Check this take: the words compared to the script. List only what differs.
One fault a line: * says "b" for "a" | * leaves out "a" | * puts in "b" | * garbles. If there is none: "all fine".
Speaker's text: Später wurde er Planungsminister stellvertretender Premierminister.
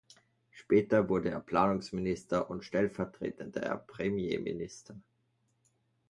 * puts in "und"